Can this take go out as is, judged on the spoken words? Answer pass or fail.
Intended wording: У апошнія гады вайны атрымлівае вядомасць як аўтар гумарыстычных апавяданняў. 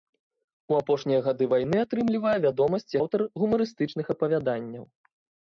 fail